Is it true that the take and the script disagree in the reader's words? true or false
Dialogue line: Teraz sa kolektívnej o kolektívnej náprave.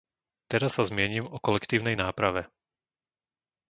true